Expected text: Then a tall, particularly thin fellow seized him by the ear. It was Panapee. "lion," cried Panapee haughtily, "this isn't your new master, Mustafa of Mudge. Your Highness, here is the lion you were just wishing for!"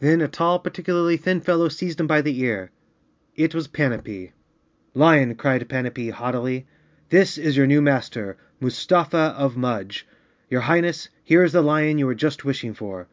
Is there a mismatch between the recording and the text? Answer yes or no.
yes